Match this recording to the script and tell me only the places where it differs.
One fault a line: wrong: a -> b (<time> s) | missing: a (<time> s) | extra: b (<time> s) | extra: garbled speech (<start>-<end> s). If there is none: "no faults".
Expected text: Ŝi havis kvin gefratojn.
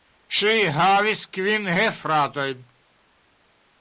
no faults